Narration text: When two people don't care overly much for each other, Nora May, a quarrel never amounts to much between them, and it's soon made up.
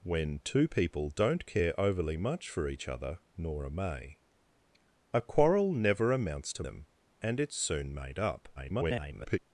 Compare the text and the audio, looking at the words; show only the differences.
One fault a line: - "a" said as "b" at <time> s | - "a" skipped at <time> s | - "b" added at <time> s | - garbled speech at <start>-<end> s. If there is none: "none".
- "much between" skipped at 6.6 s
- garbled speech at 8.6-9.4 s